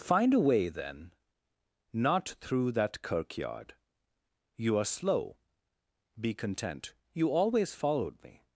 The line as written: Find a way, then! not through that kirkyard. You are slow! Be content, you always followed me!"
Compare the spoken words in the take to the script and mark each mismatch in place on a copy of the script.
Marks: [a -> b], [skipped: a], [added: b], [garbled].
Find a way, then! not through that kirkyard. You are slow! Be content, you always followed me!"